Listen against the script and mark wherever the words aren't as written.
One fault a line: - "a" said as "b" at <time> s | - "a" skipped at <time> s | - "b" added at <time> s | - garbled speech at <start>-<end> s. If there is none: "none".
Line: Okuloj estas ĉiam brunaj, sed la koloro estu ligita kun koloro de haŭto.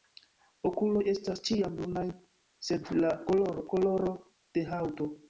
- "estu ligita kun" skipped at 3.7 s